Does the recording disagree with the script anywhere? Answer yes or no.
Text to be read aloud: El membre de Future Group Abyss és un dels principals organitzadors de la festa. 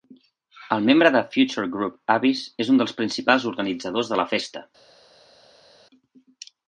no